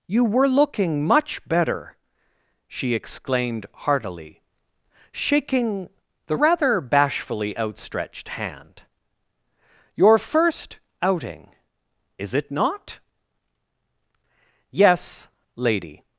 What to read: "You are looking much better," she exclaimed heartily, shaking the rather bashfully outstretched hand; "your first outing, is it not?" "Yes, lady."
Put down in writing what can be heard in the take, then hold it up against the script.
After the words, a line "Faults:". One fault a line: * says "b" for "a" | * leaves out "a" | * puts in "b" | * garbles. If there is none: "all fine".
"You were looking much better," she exclaimed heartily, shaking the rather bashfully outstretched hand; "your first outing, is it not?" "Yes, lady."
Faults:
* says "were" for "are"